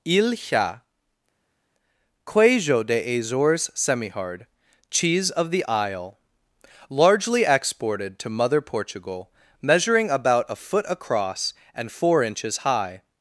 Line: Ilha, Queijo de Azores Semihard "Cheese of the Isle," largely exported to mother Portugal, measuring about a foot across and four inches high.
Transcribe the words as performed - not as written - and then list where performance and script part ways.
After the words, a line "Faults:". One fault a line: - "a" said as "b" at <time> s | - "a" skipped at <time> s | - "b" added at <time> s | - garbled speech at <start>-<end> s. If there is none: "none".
Ilha, Queijo de Azores Semihard "Cheese of the Isle," largely exported to mother Portugal, measuring about a foot across and four inches high.
Faults:
none